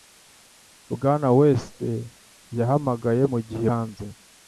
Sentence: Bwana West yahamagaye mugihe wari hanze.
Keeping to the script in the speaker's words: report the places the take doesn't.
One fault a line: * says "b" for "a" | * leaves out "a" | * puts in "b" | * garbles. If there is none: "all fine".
* leaves out "wari"